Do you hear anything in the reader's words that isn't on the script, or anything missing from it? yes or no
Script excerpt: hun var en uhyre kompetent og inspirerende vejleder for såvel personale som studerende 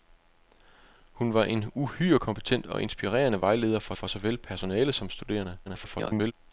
yes